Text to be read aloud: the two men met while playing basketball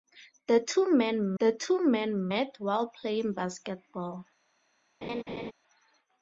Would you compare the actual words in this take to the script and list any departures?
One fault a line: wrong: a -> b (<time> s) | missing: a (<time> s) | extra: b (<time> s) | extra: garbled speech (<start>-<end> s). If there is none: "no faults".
extra: the two men (1.4 s)